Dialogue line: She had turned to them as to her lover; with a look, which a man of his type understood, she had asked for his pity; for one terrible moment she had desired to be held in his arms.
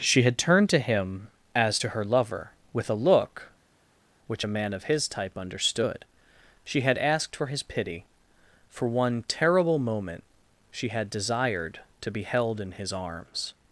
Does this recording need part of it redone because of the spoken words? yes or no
yes